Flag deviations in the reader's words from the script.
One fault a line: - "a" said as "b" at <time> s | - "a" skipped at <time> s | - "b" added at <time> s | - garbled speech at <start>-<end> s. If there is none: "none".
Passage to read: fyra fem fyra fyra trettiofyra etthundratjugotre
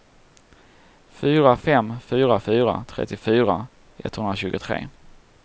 none